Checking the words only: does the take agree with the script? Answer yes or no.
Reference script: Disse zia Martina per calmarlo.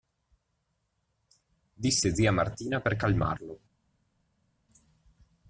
yes